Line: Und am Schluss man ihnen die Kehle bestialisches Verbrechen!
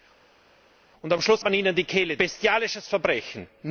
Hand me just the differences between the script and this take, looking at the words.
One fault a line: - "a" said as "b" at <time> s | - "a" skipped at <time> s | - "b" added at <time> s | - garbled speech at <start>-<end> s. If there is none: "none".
none